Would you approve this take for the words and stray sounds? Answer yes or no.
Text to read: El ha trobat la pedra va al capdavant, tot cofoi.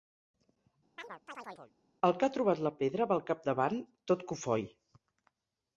no